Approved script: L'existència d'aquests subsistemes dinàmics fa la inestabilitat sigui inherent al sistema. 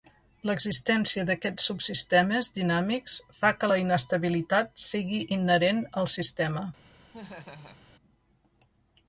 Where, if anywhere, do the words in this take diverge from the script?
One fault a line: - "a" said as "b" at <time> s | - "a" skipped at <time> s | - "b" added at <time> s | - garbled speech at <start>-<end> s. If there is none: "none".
- "que" added at 3.6 s